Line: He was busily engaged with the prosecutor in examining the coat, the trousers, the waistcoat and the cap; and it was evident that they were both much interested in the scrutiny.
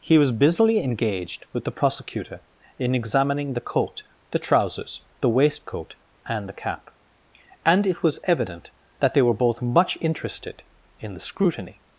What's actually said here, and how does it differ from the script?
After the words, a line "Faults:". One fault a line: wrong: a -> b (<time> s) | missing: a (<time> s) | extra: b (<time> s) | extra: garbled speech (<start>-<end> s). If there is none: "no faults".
He was busily engaged with the prosecutor in examining the coat, the trousers, the waistcoat and the cap; and it was evident that they were both much interested in the scrutiny.
Faults:
no faults